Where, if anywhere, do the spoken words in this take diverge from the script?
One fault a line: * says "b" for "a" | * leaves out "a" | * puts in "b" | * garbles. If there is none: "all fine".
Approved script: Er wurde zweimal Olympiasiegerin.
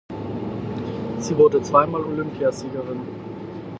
* says "Sie" for "Er"